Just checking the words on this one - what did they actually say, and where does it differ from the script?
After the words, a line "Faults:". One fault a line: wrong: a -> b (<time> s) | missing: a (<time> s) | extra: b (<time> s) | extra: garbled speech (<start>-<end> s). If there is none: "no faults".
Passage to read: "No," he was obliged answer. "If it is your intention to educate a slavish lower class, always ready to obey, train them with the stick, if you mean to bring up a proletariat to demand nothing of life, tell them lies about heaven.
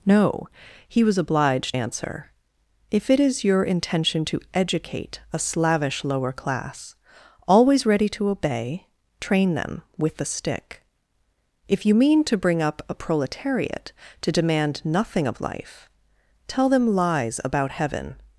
"No," he was obliged answer. "If it is your intention to educate a slavish lower class, always ready to obey, train them with the stick, if you mean to bring up a proletariat to demand nothing of life, tell them lies about heaven.
Faults:
no faults